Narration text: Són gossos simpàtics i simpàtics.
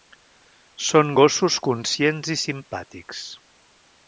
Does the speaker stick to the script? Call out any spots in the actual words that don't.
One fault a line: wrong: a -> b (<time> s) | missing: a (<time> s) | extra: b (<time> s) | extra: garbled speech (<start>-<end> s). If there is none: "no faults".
wrong: simpàtics -> conscients (1.7 s)